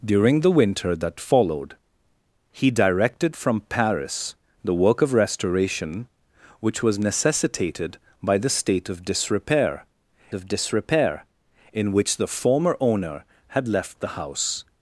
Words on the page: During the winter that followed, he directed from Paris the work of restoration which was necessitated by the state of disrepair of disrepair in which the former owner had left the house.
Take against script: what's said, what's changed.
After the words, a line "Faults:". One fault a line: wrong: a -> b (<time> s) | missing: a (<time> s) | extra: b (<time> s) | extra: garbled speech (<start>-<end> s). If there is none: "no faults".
During the winter that followed, he directed from Paris the work of restoration which was necessitated by the state of disrepair of disrepair in which the former owner had left the house.
Faults:
no faults